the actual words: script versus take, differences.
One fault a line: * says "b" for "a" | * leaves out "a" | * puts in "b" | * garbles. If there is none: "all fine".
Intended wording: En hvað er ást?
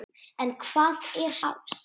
all fine